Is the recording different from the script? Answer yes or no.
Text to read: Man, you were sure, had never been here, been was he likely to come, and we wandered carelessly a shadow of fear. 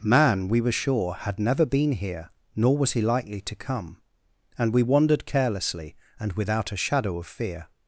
yes